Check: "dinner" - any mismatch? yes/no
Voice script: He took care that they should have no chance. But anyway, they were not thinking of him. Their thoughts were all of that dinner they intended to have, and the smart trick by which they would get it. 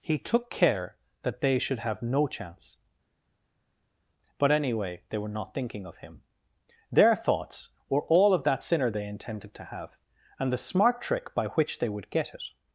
yes